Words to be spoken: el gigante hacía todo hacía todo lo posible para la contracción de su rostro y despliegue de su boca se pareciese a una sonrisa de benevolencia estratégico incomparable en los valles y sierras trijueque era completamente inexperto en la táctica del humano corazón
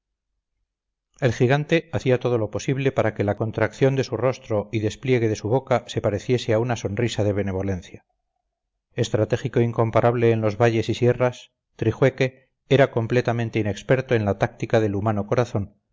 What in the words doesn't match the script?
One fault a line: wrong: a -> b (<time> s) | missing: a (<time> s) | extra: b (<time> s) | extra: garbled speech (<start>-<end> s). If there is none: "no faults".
missing: hacía todo (2.4 s)
extra: que (3.1 s)